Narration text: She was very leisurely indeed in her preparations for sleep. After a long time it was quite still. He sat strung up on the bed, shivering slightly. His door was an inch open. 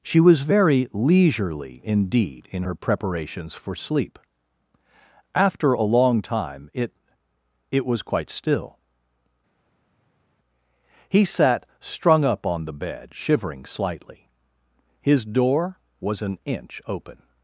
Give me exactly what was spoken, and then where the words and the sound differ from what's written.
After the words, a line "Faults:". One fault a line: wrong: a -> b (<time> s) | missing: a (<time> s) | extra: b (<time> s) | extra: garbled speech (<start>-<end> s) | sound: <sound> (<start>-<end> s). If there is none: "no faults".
She was very leisurely indeed in her preparations for sleep. After a long time it it was quite still. He sat strung up on the bed, shivering slightly. His door was an inch open.
Faults:
extra: it (7.7 s)